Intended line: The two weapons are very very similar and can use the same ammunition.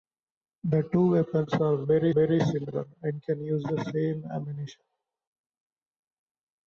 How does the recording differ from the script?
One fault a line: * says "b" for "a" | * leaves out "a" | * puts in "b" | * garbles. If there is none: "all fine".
all fine